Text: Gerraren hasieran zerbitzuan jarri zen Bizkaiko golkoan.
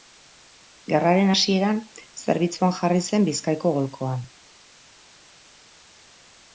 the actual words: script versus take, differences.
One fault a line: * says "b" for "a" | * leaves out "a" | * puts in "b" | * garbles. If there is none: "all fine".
all fine